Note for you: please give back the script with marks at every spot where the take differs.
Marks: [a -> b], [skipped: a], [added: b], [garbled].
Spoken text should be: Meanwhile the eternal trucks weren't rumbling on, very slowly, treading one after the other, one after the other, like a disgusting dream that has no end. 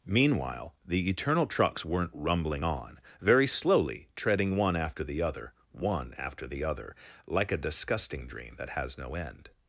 Meanwhile the eternal trucks weren't rumbling on, very slowly, treading one after the other, one after the other, like a disgusting dream that has no end.